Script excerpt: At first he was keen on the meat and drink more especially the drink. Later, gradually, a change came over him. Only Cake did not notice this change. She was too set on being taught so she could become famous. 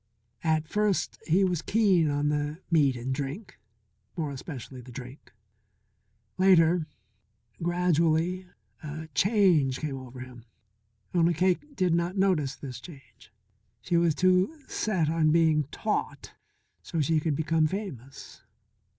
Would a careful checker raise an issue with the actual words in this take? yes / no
no